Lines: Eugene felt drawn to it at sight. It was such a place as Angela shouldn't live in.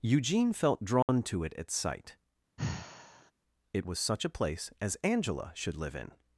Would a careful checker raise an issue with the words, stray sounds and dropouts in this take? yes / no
yes